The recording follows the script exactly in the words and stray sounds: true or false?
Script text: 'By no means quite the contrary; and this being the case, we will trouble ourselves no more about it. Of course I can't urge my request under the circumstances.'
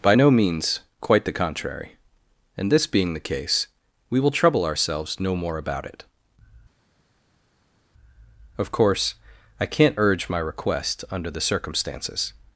true